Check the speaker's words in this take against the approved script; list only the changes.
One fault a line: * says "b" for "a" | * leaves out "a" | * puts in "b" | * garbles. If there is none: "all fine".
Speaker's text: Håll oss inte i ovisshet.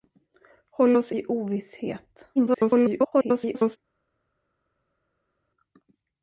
* leaves out "inte"
* garbles